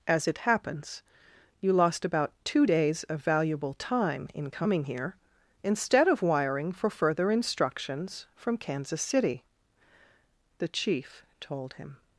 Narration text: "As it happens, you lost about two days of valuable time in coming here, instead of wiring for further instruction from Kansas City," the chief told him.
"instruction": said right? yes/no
no